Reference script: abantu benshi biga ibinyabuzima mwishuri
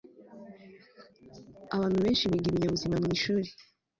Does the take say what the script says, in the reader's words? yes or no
yes